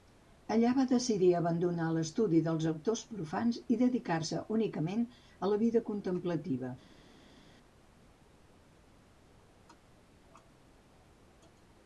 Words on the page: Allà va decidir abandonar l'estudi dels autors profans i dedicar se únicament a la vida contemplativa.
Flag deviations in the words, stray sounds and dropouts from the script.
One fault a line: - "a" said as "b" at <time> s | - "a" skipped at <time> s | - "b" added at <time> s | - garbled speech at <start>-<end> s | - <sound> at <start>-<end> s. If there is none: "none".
none